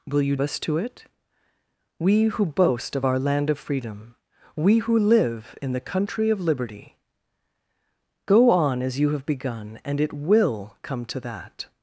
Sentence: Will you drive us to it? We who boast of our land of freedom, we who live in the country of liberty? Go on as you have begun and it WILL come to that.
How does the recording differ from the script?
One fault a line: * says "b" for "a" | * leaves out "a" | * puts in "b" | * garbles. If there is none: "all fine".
* leaves out "drive"